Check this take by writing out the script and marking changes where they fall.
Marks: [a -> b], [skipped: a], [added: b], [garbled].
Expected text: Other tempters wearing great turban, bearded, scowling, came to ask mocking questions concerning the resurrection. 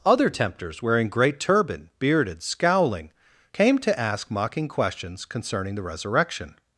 Other tempters wearing great turban, bearded, scowling, came to ask mocking questions concerning the resurrection.